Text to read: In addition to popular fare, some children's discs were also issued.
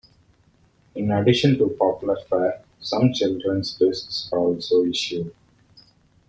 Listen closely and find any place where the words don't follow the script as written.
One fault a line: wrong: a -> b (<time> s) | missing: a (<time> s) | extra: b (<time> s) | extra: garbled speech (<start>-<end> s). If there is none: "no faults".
missing: were (4.3 s)